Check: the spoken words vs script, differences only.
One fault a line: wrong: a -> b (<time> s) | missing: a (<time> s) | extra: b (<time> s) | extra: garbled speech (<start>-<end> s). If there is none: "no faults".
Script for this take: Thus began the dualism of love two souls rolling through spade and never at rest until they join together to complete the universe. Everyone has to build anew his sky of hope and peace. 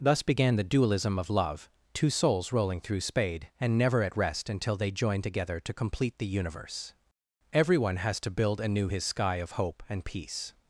no faults